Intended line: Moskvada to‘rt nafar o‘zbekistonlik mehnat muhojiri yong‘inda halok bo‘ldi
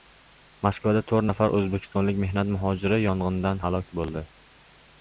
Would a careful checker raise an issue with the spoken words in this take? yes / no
no